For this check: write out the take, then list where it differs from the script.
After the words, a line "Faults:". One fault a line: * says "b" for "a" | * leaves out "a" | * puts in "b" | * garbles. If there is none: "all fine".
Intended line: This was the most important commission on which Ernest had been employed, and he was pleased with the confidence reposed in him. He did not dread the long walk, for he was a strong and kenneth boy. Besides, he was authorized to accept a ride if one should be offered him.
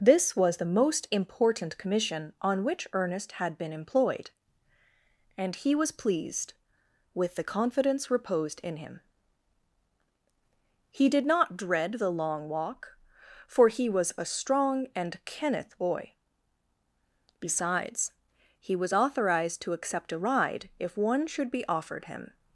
This was the most important commission on which Ernest had been employed, and he was pleased with the confidence reposed in him. He did not dread the long walk, for he was a strong and kenneth boy. Besides, he was authorized to accept a ride if one should be offered him.
Faults:
all fine